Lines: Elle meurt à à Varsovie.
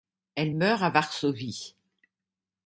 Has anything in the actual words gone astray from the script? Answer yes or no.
yes